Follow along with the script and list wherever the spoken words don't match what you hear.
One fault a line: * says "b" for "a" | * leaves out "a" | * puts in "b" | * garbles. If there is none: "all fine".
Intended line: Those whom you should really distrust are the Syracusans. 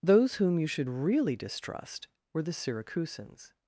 * says "were" for "are"